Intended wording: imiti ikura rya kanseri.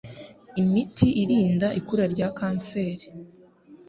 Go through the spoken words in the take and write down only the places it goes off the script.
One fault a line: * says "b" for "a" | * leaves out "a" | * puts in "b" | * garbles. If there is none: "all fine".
* puts in "irinda"